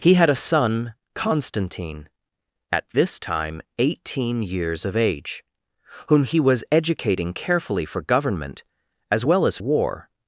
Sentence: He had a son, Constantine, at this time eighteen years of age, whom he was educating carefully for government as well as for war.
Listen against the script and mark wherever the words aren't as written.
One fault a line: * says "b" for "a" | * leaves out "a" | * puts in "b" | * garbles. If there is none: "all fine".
* leaves out "for"